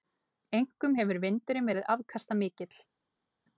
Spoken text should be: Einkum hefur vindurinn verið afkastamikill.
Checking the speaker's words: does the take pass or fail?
pass